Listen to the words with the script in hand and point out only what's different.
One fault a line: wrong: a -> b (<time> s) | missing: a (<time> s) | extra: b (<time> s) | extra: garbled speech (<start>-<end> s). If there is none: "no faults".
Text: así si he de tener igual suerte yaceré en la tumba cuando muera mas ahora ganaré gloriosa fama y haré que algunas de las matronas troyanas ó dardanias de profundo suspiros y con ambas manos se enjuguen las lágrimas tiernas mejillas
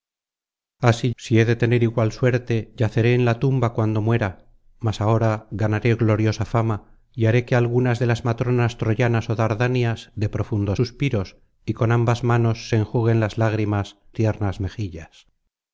no faults